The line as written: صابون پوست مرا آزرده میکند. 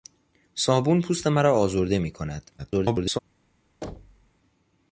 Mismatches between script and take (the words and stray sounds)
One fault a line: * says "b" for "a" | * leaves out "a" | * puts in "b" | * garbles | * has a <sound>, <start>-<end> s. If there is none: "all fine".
* garbles
* has a thud, 3.8-4.3 s